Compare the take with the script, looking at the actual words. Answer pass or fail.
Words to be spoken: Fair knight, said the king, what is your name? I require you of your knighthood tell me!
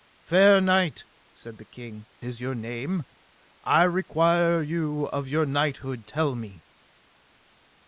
fail